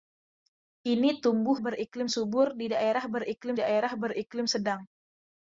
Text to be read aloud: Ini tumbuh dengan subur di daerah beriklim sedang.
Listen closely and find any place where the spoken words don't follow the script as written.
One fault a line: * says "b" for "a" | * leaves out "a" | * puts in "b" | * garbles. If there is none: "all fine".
* says "beriklim" for "dengan"
* puts in "daerah beriklim"